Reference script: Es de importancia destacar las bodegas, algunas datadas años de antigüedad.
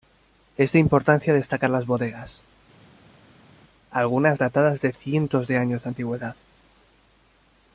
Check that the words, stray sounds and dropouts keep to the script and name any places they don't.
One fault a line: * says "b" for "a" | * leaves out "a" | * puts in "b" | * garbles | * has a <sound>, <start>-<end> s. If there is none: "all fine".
* puts in "de cientos de"